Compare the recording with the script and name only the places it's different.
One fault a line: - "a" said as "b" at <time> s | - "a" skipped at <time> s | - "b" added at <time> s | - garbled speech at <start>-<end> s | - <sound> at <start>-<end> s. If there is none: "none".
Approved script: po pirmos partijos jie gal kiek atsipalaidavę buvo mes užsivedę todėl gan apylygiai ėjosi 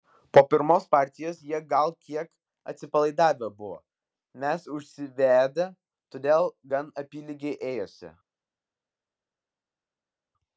none